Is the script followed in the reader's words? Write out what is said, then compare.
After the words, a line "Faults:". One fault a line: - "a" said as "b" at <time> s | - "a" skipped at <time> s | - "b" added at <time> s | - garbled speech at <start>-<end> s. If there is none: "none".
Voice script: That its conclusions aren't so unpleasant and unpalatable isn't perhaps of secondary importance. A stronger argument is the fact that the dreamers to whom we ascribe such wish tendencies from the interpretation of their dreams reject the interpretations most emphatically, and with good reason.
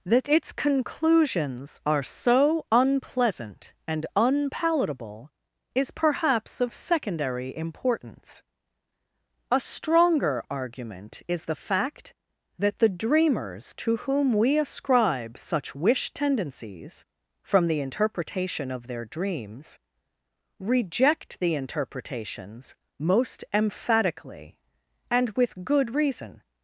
That its conclusions are so unpleasant and unpalatable is perhaps of secondary importance. A stronger argument is the fact that the dreamers to whom we ascribe such wish tendencies from the interpretation of their dreams reject the interpretations most emphatically, and with good reason.
Faults:
- "aren't" said as "are" at 1.9 s
- "isn't" said as "is" at 5.8 s